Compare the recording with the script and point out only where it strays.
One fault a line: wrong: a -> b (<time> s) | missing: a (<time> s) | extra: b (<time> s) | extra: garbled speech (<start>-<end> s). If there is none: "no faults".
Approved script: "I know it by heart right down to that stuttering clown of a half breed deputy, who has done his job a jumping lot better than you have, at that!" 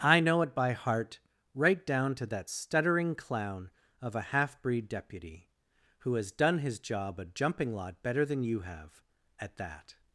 no faults